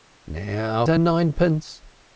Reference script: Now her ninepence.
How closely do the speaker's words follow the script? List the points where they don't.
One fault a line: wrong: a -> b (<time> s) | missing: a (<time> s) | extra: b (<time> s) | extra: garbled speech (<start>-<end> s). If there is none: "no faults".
no faults